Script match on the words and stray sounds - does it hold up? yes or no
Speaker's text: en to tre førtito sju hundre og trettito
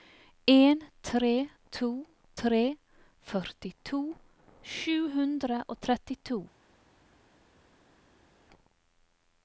no